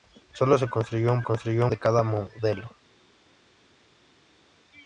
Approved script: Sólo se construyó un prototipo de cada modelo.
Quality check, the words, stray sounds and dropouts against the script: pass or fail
fail